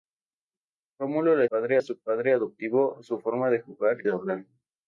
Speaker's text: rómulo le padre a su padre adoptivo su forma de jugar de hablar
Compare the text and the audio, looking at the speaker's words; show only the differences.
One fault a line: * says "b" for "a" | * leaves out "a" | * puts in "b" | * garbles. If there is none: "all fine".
all fine